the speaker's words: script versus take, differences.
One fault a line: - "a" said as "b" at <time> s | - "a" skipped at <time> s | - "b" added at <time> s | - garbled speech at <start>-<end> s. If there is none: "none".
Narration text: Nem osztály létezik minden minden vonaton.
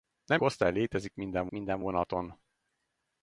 none